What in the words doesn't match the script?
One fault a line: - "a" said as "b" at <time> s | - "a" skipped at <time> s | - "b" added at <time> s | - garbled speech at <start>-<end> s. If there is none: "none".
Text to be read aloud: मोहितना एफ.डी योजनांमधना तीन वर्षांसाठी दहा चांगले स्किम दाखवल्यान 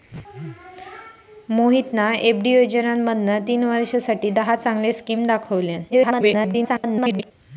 - garbled speech at 5.9-7.3 s